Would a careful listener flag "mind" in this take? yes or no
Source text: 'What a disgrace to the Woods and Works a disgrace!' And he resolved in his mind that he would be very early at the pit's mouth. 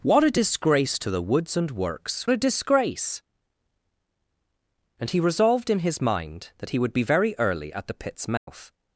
no